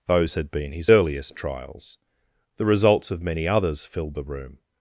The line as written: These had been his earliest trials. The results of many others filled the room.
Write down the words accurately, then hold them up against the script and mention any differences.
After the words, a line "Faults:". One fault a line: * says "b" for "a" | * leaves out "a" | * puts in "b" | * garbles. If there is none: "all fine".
Those had been his earliest trials. The results of many others filled the room.
Faults:
* says "Those" for "These"